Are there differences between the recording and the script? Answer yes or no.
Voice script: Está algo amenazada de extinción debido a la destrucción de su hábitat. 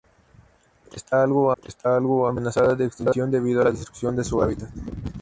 yes